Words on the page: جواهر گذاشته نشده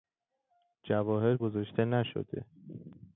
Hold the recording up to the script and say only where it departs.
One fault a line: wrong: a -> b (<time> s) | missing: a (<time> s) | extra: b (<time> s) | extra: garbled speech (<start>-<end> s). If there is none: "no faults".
no faults